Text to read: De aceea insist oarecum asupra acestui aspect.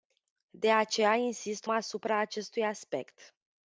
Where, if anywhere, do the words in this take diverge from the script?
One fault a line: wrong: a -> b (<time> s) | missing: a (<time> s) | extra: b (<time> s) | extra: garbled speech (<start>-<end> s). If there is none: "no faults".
missing: oarecum (1.7 s)